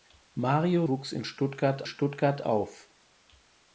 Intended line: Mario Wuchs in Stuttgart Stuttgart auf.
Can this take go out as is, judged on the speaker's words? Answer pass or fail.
pass